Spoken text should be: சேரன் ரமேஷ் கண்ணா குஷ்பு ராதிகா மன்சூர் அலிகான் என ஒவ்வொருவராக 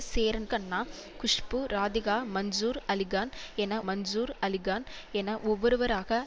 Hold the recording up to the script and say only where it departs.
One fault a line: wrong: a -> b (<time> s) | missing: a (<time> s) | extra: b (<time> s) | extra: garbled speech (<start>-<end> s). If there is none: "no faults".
missing: ரமேஷ் (0.5 s)
extra: மன்சூர் அலிகான் என (3.9 s)